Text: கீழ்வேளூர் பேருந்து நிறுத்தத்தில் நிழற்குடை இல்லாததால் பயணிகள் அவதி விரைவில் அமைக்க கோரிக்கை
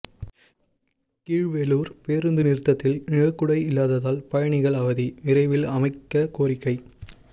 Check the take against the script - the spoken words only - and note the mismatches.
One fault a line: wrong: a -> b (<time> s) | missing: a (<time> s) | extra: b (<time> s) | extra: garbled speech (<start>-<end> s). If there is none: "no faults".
no faults